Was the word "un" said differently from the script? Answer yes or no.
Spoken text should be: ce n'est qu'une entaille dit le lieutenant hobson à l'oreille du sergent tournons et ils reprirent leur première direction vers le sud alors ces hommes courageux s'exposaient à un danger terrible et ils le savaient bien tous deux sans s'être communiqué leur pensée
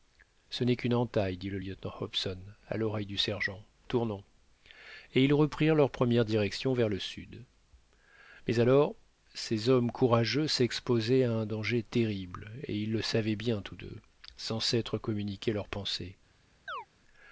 no